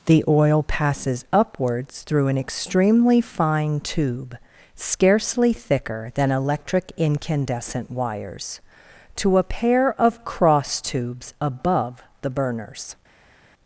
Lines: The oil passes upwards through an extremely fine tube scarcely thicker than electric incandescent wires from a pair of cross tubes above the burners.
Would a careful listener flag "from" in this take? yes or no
yes